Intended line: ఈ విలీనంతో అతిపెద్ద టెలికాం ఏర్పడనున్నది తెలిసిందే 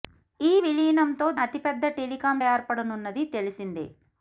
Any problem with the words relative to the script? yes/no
no